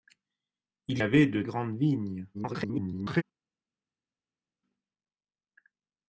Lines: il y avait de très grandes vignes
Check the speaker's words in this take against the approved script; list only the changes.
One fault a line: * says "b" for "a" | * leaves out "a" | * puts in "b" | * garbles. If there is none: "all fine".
* leaves out "y"
* leaves out "très"
* garbles